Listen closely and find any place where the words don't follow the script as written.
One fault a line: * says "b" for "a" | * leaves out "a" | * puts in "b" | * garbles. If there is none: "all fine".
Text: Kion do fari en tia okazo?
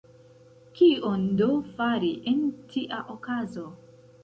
all fine